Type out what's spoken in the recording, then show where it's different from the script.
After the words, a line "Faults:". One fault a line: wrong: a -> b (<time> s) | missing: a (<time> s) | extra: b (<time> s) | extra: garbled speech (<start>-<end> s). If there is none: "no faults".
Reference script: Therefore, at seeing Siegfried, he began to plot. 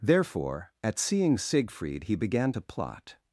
Therefore, at seeing Siegfried, he began to plot.
Faults:
no faults